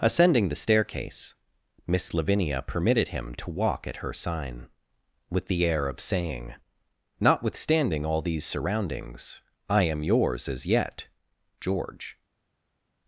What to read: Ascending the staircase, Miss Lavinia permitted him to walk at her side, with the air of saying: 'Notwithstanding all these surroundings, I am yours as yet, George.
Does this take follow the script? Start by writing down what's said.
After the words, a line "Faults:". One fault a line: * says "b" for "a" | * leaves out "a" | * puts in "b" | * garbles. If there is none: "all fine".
Ascending the staircase, Miss Lavinia permitted him to walk at her sign, with the air of saying: 'Notwithstanding all these surroundings, I am yours as yet, George.
Faults:
* says "sign" for "side"